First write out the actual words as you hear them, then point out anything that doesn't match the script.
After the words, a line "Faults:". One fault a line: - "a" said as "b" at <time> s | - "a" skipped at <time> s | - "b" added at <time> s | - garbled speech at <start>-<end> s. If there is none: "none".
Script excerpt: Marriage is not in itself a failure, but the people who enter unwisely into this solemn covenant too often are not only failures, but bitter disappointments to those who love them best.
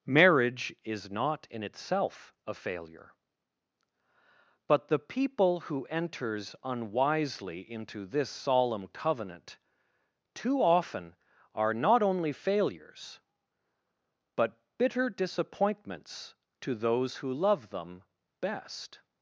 Marriage is not in itself a failure, but the people who enters unwisely into this solemn covenant too often are not only failures, but bitter disappointments to those who love them best.
Faults:
- "enter" said as "enters" at 5.8 s